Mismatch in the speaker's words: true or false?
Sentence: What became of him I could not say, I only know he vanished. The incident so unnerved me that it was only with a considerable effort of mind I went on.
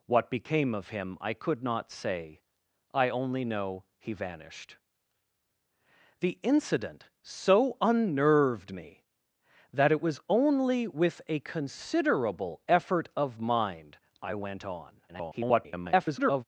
true